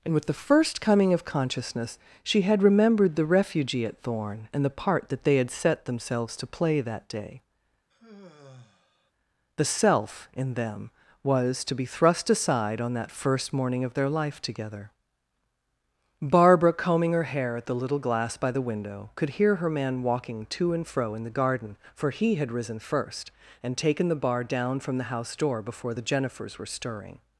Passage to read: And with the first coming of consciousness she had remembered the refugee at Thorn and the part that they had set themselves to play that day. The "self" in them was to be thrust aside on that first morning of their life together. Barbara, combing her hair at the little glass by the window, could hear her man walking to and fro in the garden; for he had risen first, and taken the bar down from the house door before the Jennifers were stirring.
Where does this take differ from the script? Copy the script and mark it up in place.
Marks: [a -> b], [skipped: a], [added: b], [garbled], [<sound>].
And with the first coming of consciousness she had remembered the refugee at Thorn and the part that they had set themselves to play that day. [sigh] The "self" in them was to be thrust aside on that first morning of their life together. Barbara, combing her hair at the little glass by the window, could hear her man walking to and fro in the garden; for he had risen first, and taken the bar down from the house door before the Jennifers were stirring.